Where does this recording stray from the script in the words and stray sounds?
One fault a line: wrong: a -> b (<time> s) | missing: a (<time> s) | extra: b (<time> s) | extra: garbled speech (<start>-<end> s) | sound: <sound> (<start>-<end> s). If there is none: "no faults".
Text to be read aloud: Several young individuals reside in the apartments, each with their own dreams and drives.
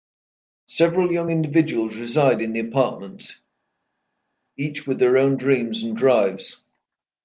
no faults